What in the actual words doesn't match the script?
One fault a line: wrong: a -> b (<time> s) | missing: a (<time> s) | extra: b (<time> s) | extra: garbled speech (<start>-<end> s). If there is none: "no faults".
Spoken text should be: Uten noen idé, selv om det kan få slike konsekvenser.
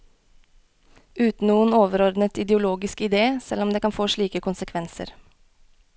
extra: overordnet ideologisk (1.8 s)